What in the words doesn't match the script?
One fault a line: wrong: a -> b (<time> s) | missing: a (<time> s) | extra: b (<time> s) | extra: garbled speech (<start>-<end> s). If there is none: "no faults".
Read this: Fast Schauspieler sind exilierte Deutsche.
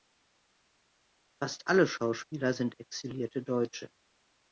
extra: alle (1.7 s)